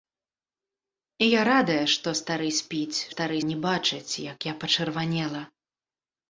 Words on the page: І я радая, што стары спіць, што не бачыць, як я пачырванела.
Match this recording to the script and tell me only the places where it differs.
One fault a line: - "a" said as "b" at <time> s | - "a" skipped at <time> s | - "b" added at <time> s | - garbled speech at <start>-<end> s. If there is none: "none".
- "што" said as "стары" at 3.1 s